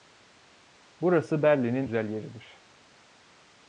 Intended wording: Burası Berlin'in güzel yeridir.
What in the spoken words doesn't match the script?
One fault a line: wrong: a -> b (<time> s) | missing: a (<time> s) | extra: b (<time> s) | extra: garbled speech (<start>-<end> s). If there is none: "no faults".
no faults